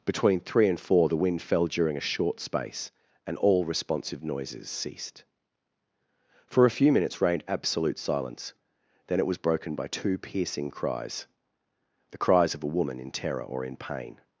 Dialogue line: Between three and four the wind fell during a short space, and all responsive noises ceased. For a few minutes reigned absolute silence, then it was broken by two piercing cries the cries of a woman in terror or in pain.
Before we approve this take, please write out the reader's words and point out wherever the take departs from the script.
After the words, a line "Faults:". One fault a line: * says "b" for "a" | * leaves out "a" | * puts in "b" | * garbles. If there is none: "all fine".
Between three and four the wind fell during a short space, and all responsive noises ceased. For a few minutes reigned absolute silence, then it was broken by two piercing cries the cries of a woman in terror or in pain.
Faults:
all fine